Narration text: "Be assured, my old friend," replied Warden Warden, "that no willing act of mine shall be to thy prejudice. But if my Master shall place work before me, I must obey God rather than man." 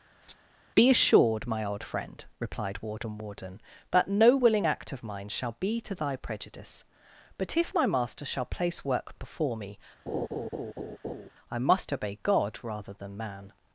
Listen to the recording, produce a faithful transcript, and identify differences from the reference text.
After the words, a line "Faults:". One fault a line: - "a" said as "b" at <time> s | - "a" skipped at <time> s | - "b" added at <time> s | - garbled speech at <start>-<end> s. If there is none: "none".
"Be assured, my old friend," replied Warden Warden, "that no willing act of mine shall be to thy prejudice. But if my Master shall place work before me, I must obey God rather than man."
Faults:
none